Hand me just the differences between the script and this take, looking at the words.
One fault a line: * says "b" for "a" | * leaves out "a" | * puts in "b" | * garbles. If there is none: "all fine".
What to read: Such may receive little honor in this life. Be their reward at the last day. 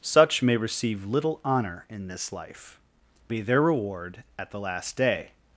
all fine